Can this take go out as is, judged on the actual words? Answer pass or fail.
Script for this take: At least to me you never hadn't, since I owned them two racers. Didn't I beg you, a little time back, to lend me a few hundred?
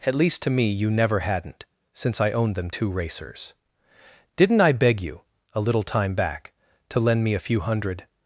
pass